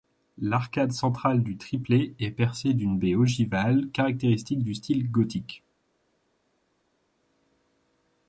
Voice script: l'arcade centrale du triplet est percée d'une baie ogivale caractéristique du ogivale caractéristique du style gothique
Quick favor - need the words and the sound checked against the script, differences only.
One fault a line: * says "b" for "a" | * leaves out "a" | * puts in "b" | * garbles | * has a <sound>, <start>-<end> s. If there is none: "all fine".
* leaves out "ogivale caractéristique du"